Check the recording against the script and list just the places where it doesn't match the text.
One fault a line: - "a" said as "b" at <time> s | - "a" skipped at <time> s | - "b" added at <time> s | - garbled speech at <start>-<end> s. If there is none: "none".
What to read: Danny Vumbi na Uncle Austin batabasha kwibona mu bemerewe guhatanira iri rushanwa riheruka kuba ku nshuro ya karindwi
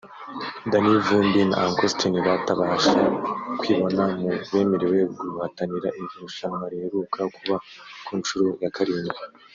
none